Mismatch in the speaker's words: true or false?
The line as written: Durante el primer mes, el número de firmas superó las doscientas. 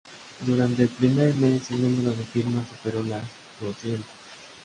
false